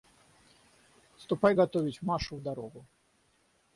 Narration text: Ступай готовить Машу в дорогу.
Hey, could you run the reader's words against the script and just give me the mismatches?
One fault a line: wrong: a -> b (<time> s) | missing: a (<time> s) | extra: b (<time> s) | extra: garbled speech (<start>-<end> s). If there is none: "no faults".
no faults